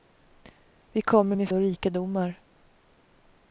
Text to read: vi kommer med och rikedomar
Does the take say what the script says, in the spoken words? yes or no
yes